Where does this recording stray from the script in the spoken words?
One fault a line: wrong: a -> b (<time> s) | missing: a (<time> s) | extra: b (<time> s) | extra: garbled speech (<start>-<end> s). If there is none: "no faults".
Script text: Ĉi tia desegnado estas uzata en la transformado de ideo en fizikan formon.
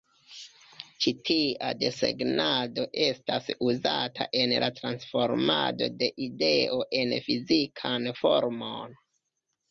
no faults